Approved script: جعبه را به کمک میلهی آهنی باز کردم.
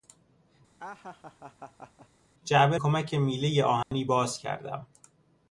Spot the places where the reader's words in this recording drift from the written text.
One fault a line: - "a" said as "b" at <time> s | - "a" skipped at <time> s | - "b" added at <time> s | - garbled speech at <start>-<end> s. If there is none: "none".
- "را به" skipped at 2.8 s